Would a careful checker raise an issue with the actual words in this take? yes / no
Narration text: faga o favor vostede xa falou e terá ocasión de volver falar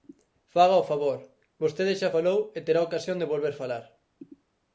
no